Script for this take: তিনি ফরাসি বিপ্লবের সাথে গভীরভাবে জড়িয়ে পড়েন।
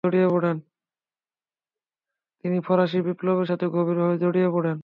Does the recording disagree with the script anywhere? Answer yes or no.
no